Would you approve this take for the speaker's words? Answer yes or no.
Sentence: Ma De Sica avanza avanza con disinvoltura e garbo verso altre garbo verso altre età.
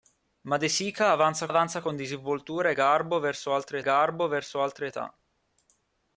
yes